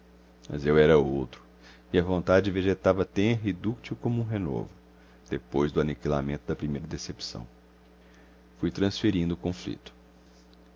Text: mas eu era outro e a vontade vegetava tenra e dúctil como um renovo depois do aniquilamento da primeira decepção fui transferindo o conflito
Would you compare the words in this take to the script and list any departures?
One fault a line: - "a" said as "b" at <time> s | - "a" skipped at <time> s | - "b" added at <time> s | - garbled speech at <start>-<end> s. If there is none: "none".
none